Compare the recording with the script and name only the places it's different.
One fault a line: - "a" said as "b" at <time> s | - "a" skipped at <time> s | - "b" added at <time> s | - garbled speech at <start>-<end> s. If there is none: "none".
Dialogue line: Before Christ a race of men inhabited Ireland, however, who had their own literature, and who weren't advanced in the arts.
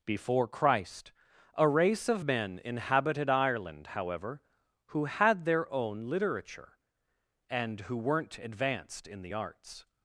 none